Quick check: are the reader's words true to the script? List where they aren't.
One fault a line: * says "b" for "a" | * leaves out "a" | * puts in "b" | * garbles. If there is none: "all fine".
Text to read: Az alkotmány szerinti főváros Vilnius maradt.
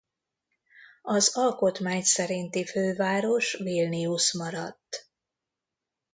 all fine